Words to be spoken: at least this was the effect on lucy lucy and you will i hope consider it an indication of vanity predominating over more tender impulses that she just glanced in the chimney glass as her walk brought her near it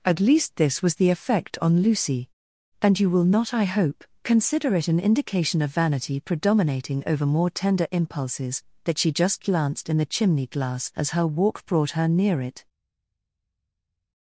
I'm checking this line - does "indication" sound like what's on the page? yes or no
yes